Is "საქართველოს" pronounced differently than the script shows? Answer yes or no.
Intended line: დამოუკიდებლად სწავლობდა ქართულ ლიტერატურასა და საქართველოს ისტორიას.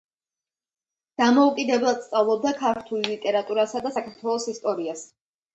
no